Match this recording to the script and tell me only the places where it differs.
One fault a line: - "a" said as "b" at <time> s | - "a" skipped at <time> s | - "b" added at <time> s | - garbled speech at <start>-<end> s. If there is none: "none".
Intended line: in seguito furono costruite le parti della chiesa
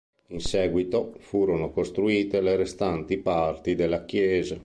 - "restanti" added at 2.5 s